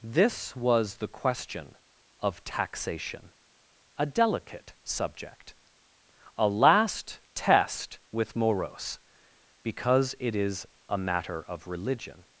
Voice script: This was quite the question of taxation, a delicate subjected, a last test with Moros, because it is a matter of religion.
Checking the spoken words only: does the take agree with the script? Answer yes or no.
no